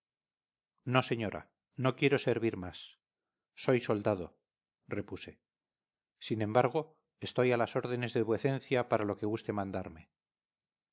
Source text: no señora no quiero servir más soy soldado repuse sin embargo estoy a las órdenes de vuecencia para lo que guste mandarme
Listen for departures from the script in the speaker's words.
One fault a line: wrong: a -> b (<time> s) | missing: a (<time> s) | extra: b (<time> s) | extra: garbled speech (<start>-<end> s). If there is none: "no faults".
no faults